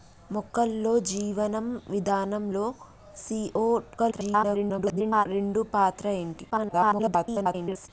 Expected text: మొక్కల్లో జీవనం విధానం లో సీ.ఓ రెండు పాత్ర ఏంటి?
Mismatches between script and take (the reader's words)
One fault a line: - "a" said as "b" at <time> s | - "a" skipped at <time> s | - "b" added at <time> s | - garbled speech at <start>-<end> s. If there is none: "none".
- garbled speech at 4.0-5.3 s
- garbled speech at 6.5-7.9 s